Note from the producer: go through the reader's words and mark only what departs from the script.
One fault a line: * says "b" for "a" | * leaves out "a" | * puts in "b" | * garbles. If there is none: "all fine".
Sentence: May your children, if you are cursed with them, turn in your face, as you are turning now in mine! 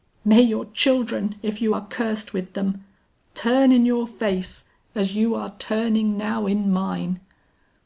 all fine